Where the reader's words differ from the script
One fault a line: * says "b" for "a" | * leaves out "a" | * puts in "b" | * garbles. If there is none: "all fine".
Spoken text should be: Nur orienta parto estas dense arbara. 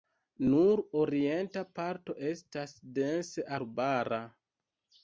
all fine